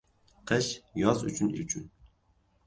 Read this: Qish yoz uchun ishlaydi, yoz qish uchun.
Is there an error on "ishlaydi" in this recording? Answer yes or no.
yes